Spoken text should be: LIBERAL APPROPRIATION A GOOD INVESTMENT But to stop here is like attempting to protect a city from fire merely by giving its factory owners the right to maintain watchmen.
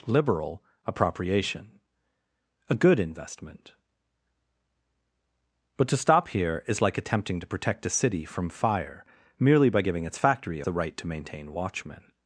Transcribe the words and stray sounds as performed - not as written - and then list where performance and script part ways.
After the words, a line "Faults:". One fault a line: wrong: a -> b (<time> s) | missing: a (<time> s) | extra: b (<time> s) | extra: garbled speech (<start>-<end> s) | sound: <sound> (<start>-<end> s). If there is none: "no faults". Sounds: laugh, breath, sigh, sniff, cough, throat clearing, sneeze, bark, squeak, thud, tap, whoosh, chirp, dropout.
LIBERAL APPROPRIATION A GOOD INVESTMENT But to stop here is like attempting to protect a city from fire merely by giving its factory the right to maintain watchmen.
Faults:
missing: owners (10.6 s)